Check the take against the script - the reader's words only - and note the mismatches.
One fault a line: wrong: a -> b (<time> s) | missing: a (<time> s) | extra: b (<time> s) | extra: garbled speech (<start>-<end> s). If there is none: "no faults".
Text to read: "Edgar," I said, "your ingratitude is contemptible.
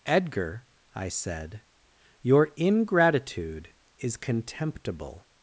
no faults